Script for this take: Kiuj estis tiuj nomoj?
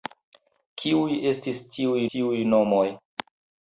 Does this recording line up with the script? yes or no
no